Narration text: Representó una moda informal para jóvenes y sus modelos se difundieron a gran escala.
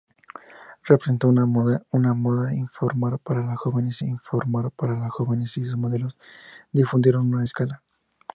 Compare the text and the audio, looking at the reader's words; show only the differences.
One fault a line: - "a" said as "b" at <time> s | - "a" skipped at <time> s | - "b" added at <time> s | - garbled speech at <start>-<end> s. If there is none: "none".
- "informal para jóvenes" added at 4.0 s
- "gran" skipped at 7.4 s